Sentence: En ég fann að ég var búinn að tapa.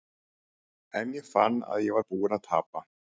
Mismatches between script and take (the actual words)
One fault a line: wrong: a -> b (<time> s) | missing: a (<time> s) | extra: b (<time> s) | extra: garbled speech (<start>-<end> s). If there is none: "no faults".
no faults